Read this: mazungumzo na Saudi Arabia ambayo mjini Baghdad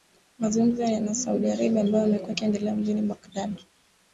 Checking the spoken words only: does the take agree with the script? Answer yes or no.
no